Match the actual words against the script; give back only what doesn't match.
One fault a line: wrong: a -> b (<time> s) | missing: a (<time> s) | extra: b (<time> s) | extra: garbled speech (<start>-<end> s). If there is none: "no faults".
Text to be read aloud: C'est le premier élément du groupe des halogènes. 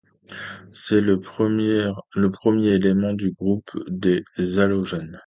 no faults